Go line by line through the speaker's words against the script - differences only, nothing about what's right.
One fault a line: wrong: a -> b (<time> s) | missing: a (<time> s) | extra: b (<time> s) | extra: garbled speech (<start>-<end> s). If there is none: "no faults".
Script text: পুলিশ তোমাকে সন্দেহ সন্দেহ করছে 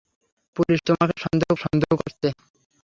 no faults